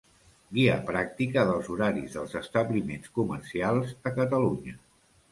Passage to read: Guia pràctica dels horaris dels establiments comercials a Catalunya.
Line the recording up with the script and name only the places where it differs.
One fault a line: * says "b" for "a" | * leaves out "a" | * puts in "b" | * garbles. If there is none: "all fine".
all fine